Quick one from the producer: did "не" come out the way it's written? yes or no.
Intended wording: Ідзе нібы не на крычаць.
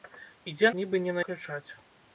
yes